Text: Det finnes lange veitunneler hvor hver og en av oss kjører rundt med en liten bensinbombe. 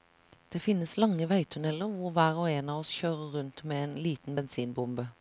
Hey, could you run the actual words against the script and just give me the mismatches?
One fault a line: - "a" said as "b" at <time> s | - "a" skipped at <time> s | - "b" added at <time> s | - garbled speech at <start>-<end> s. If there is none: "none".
none